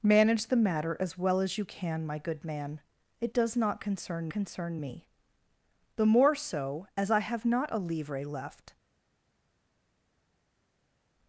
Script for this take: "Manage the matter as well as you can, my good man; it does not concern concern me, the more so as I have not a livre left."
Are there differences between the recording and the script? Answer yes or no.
no